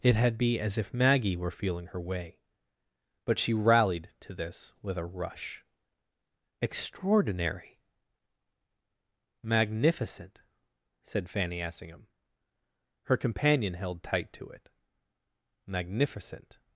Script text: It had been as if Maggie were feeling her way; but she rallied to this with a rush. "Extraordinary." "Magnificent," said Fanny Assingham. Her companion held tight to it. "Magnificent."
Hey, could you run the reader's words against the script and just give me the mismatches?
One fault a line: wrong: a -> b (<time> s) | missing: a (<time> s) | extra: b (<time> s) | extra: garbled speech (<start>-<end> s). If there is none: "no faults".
wrong: been -> be (0.4 s)